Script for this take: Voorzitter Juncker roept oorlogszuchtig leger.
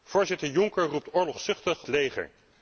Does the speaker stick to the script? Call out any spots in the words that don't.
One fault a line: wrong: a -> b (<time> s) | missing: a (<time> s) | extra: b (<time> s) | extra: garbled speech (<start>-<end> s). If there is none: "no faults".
no faults